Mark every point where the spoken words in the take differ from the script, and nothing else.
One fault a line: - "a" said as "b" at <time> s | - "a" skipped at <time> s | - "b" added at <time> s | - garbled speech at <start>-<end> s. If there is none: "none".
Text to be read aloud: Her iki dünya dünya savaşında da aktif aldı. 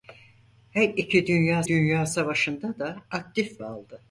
none